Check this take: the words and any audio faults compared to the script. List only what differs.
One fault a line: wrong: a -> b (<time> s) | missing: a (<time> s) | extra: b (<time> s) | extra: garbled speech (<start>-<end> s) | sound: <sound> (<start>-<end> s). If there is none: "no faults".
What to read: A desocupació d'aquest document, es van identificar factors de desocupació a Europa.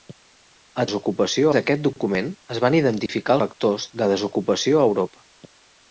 sound: dropout (3.1-3.1 s)